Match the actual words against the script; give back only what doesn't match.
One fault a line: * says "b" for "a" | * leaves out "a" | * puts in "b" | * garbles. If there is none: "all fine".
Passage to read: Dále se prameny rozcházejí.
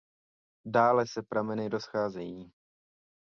all fine